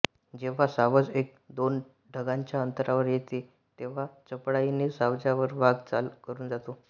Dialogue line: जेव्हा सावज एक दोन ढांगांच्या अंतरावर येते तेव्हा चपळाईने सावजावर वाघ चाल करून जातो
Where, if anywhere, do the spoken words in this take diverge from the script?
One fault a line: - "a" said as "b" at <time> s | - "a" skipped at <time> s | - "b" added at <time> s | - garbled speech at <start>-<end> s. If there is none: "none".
none